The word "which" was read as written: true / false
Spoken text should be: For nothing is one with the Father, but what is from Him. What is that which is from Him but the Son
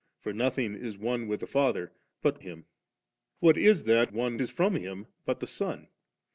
false